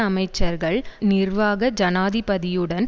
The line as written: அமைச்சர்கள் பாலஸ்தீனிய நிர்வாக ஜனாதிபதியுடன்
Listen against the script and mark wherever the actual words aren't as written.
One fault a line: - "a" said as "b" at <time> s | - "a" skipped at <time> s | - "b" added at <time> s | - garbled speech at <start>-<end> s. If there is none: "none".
- "பாலஸ்தீனிய" skipped at 0.8 s